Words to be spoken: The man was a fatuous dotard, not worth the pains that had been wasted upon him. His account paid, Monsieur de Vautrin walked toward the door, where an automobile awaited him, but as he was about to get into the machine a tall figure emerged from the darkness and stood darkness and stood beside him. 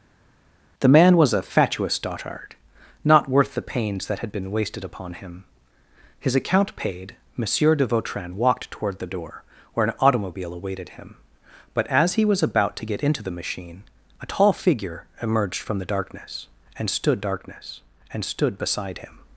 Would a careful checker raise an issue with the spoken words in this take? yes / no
no